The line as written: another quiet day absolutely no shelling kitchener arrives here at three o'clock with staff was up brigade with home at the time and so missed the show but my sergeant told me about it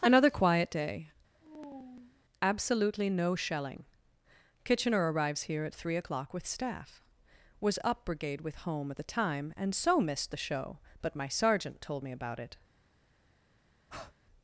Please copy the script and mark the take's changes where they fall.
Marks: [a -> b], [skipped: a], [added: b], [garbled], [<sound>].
another quiet day [sigh] absolutely no shelling kitchener arrives here at three o'clock with staff was up brigade with home at the time and so missed the show but my sergeant told me about it [breath]